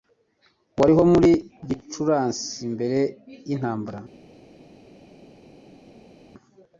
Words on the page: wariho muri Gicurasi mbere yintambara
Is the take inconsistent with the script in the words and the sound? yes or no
no